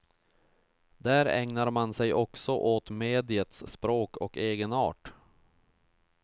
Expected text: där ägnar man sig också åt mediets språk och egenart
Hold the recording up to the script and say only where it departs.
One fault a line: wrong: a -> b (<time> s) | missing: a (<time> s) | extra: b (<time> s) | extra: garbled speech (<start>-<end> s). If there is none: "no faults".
no faults